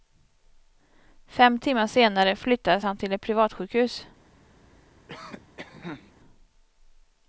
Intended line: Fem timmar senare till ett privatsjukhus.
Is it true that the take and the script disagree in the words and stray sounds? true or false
true